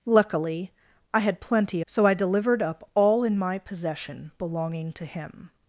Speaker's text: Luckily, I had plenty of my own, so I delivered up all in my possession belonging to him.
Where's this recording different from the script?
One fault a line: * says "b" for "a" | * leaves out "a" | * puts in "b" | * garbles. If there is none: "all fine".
* leaves out "of my own"